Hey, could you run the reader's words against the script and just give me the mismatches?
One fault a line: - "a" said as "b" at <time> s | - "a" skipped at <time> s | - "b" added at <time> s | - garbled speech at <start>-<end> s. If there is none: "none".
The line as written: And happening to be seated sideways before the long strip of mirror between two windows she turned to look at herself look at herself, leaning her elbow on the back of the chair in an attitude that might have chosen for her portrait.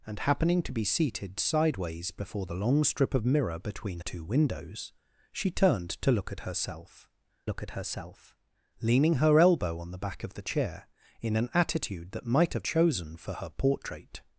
none